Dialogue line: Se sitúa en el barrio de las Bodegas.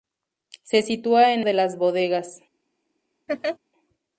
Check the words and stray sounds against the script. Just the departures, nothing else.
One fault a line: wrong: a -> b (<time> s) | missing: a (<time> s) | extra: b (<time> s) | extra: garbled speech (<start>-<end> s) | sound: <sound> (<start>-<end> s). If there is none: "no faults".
missing: el barrio (1.4 s)
sound: laugh (3.3-3.6 s)